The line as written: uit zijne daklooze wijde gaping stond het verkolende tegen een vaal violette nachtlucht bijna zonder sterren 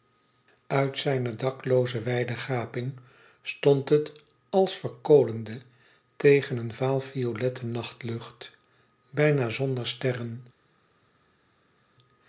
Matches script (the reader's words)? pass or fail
fail